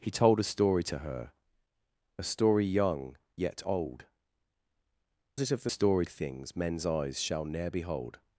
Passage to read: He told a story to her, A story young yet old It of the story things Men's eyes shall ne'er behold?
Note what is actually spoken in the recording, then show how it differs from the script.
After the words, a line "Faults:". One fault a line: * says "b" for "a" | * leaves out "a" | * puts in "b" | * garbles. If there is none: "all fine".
He told a story to her, A story young yet old It of the story things Men's eyes shall ne'er behold?
Faults:
all fine